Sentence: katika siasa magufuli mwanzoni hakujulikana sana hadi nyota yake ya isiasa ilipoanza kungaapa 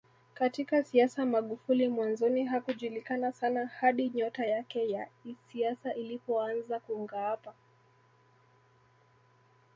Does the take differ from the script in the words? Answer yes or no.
no